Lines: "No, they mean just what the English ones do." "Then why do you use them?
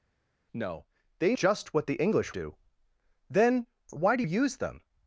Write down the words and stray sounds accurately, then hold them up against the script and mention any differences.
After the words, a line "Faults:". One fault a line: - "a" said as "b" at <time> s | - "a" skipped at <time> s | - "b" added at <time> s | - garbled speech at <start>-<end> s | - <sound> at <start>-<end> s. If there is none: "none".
"No, they just what the English do." "Then why do use them?
Faults:
- "mean" skipped at 1.4 s
- "ones" skipped at 2.3 s
- "you" skipped at 4.2 s